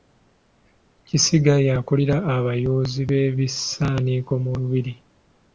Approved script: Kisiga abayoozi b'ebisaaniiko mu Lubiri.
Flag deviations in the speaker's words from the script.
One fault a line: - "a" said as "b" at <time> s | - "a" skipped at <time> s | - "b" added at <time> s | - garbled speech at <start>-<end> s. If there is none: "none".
- "y'akulira" added at 1.7 s